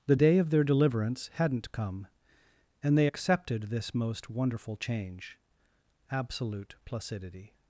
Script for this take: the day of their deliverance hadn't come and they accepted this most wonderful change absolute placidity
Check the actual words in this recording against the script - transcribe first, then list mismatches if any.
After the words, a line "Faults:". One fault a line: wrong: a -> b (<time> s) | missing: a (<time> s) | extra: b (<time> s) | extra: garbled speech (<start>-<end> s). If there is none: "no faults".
the day of their deliverance hadn't come and they accepted this most wonderful change absolute placidity
Faults:
no faults